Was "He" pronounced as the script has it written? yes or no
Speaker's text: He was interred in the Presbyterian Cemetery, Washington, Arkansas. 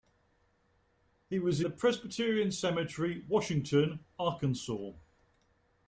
yes